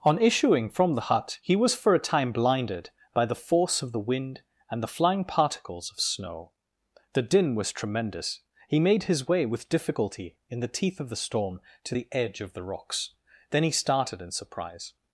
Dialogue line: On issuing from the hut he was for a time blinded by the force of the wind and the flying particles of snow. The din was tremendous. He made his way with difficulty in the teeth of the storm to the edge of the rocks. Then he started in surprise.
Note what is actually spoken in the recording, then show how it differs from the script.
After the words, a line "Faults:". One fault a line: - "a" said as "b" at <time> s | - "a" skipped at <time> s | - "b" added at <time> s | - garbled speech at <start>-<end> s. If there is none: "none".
On issuing from the hut he was for a time blinded by the force of the wind and the flying particles of snow. The din was tremendous. He made his way with difficulty in the teeth of the storm to the edge of the rocks. Then he started in surprise.
Faults:
none